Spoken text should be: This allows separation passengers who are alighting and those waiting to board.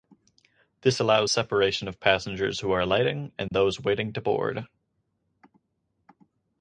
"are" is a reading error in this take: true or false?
false